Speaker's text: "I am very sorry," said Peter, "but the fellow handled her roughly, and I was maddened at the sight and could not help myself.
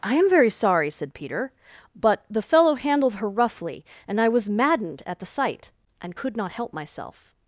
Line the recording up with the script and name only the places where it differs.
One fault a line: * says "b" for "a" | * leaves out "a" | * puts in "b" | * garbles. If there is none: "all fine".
all fine